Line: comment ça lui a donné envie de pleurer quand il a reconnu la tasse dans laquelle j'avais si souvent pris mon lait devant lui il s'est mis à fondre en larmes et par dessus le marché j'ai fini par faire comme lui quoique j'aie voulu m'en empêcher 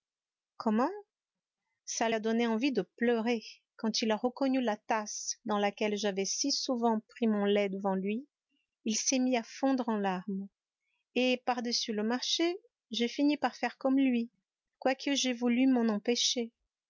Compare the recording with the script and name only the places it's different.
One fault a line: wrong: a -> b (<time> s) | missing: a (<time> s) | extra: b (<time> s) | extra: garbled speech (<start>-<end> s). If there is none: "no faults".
missing: lui (2.1 s)